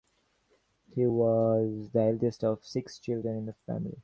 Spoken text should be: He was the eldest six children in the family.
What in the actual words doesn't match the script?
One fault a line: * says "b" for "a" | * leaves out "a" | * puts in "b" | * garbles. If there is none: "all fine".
* puts in "of"